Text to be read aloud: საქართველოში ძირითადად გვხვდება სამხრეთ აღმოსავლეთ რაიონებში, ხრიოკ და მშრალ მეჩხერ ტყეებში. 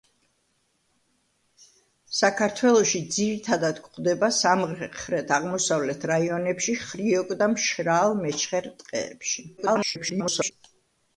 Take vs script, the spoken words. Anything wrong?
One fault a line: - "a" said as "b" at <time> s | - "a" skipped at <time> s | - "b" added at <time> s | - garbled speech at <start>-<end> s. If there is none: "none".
- garbled speech at 9.6-10.5 s